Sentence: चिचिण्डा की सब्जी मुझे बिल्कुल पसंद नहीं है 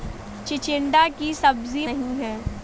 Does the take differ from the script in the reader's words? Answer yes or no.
yes